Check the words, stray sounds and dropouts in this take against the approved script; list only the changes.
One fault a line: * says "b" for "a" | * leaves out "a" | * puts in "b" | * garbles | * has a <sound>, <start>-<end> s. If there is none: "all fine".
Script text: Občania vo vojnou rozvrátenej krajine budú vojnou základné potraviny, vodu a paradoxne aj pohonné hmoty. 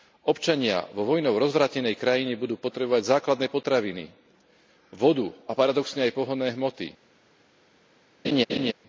* says "potrebovať" for "vojnou"
* has a laugh, 8.2-8.7 s